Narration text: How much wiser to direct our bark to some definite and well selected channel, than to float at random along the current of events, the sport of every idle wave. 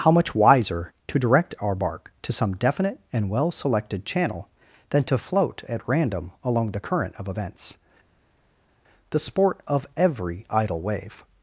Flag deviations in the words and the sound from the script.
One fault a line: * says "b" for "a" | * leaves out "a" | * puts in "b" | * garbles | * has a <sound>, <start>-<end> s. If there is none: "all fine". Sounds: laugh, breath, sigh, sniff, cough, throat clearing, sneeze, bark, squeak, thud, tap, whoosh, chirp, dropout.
all fine